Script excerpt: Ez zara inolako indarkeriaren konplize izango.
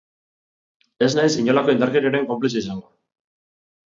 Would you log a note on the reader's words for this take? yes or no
yes